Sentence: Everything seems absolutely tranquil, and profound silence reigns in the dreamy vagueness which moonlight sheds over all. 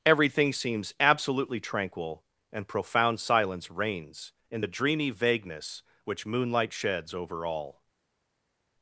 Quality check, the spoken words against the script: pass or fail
pass